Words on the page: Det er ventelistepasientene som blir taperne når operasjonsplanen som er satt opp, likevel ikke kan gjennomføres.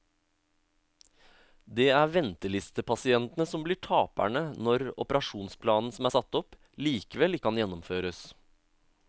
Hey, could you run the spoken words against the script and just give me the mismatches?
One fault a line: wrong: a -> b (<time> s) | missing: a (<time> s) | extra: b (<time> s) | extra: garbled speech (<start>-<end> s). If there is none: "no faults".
missing: ikke (7.4 s)